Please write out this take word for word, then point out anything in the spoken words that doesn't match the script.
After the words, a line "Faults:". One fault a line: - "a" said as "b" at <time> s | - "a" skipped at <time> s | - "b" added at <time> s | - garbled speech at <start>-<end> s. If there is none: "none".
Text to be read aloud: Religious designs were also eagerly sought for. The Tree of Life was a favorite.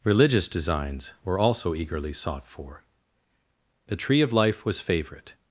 Religious designs were also eagerly sought for. The Tree of Life was favorite.
Faults:
- "a" skipped at 4.8 s